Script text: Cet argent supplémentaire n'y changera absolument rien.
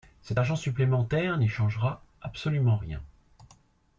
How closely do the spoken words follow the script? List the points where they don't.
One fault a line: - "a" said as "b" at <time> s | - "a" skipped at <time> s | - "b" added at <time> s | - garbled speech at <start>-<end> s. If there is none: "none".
none